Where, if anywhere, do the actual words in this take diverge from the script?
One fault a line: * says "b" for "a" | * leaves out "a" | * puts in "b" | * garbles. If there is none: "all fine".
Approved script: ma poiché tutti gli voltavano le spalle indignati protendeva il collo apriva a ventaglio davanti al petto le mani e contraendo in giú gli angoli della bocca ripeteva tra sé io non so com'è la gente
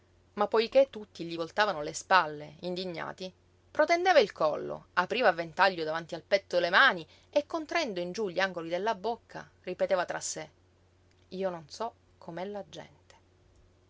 all fine